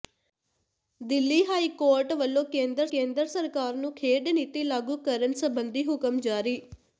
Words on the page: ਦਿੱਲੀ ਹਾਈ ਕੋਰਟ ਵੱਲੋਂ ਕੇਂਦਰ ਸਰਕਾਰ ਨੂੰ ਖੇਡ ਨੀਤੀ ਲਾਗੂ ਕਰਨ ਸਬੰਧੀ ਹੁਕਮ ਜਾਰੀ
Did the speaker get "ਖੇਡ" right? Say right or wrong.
right